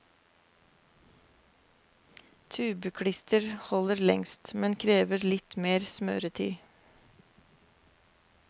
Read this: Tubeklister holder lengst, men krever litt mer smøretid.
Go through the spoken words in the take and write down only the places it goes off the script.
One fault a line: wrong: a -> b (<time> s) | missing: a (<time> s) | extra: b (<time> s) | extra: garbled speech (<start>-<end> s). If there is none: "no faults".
no faults